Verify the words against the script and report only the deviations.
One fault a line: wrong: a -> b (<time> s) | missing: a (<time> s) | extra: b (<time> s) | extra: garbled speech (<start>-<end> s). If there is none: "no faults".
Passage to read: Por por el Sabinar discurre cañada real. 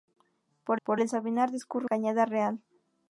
no faults